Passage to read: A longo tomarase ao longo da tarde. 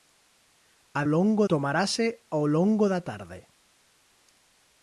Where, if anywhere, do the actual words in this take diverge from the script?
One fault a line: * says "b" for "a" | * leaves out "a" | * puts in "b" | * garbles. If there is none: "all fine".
all fine